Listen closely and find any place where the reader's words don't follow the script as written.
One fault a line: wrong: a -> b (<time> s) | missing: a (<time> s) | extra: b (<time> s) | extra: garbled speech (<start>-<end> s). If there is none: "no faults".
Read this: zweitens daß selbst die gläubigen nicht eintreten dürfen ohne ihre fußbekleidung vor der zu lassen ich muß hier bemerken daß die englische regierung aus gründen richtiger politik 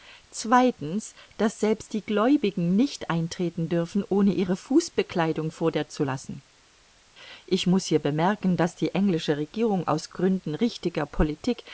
no faults